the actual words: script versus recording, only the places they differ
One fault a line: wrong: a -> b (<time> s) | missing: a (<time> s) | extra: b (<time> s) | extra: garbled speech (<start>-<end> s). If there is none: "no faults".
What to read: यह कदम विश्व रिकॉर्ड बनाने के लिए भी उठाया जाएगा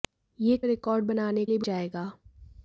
missing: कदम विश्व (0.6 s)
missing: के (1.5 s)
missing: उठाया (1.7 s)